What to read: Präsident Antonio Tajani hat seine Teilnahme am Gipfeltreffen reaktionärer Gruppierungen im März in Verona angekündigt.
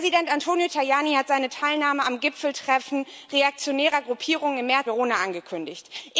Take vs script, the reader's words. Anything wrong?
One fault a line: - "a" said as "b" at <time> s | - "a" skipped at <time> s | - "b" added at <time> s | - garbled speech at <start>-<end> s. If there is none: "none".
- "in" skipped at 4.9 s